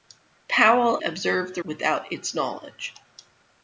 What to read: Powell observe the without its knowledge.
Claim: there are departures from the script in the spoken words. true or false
false